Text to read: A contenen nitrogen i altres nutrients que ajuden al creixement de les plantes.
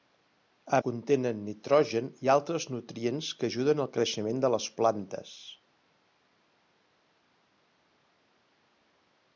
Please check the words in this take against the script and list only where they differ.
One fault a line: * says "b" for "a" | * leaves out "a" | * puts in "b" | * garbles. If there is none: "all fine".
all fine